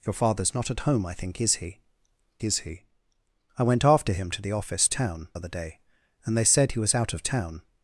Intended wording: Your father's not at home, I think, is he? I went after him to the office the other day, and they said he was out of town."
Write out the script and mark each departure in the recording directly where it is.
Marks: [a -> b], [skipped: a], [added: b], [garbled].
Your father's not at home, I think, is he? [added: is he] I went after him to the office [the -> town] other day, and they said he was out of town."